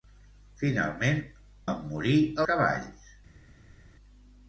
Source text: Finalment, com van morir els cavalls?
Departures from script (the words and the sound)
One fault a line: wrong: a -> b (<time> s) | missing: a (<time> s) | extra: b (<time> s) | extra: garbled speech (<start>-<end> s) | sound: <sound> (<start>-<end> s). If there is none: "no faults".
missing: com (1.2 s)
missing: els (2.2 s)